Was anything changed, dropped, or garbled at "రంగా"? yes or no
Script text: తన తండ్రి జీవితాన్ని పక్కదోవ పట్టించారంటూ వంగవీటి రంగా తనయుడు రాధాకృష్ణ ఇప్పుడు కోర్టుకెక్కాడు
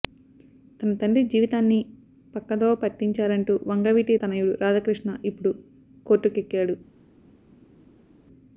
yes